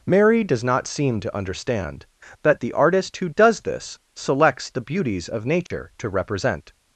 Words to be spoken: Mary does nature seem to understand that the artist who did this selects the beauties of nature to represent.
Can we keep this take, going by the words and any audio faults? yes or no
no